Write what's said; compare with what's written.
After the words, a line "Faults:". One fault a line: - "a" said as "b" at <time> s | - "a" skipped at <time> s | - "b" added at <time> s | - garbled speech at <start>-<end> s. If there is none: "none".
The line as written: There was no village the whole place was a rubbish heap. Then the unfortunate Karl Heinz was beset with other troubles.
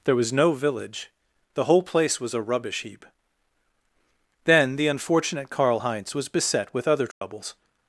There was no village the whole place was a rubbish heap. Then the unfortunate Karl Heinz was beset with other troubles.
Faults:
none